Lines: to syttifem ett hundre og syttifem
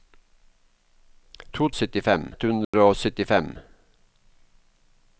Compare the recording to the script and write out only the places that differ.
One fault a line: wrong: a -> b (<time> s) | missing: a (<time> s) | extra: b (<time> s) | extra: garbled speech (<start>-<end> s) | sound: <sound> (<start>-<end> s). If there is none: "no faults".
sound: dropout (2.6-2.7 s)